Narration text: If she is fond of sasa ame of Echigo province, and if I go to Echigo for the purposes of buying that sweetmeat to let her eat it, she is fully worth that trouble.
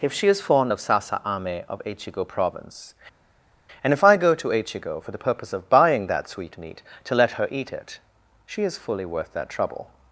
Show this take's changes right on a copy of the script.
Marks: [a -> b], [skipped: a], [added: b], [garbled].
If she is fond of sasa ame of Echigo province, and if I go to Echigo for the [purposes -> purpose] of buying that sweetmeat to let her eat it, she is fully worth that trouble.